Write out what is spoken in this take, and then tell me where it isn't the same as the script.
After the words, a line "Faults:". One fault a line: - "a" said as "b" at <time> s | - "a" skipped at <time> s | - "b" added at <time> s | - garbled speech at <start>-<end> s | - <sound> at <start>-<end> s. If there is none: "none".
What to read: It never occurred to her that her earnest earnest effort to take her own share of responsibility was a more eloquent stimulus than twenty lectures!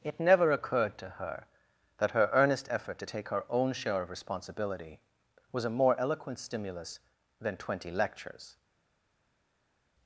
It never occurred to her that her earnest effort to take her own share of responsibility was a more eloquent stimulus than twenty lectures!
Faults:
- "earnest" skipped at 2.7 s